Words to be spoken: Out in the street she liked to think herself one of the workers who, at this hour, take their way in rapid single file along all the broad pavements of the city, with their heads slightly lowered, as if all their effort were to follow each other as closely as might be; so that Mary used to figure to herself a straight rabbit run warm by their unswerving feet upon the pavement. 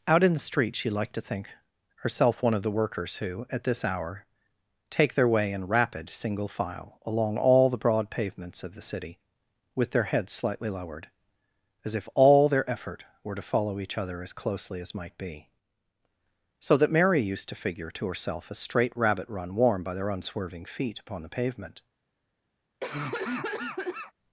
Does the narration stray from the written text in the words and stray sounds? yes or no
yes